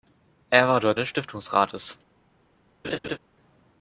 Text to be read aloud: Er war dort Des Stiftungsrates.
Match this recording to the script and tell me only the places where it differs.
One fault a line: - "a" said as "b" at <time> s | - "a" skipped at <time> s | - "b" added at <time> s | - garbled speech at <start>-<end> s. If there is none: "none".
none